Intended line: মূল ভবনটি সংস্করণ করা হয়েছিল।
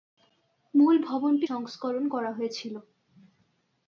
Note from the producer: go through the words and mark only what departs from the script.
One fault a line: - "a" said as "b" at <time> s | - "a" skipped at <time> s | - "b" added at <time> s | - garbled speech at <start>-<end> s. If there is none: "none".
none